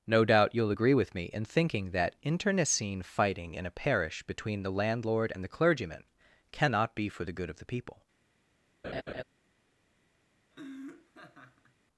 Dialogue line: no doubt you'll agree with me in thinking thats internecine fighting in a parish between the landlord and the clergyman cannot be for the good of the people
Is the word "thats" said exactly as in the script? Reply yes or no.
no